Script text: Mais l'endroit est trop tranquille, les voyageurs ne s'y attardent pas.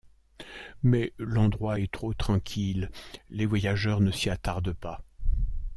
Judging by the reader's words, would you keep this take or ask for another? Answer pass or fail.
pass